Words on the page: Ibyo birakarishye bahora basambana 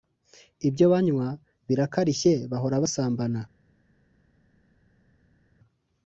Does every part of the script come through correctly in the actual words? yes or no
no